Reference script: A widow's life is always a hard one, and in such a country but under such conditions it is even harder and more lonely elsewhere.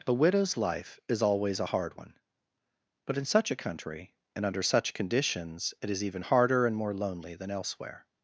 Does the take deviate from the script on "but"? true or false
true